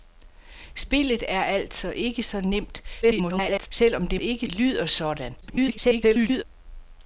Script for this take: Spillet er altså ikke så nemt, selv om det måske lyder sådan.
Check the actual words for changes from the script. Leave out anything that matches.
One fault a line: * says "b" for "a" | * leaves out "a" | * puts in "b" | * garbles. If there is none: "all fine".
* garbles
* says "ikke" for "måske"
* garbles